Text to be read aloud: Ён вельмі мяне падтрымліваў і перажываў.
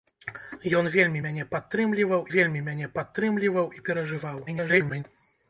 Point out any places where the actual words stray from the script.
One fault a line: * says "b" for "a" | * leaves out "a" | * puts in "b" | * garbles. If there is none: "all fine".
* puts in "вельмі мяне падтрымліваў"
* garbles